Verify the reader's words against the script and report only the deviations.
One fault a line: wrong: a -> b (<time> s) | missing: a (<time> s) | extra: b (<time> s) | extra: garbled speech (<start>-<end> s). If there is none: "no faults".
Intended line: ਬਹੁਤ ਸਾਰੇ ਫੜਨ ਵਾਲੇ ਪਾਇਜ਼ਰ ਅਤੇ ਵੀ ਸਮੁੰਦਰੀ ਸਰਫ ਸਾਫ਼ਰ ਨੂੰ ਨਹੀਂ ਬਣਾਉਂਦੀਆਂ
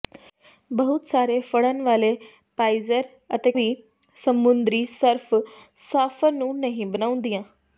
no faults